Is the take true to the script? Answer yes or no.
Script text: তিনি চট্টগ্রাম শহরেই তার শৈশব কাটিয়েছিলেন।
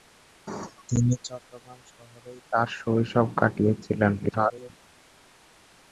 no